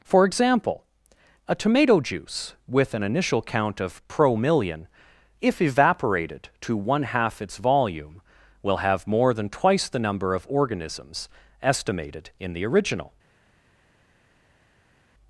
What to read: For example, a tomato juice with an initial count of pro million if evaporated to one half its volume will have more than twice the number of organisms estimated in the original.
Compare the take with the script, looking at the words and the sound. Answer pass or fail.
pass